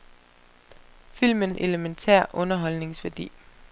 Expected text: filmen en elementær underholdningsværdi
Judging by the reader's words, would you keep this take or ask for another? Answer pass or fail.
pass